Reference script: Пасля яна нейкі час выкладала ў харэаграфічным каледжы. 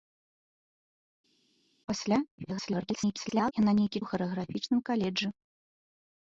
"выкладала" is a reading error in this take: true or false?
true